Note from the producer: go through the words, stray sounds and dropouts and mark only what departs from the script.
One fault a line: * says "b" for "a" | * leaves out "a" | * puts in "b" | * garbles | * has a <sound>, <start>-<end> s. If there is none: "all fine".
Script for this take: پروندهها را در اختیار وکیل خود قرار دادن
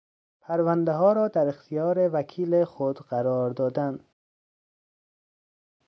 all fine